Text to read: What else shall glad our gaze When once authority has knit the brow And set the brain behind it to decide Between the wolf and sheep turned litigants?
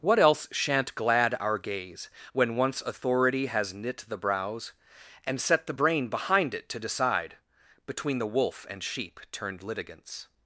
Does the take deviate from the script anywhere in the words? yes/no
yes